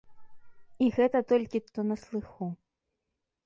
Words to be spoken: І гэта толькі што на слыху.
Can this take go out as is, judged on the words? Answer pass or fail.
pass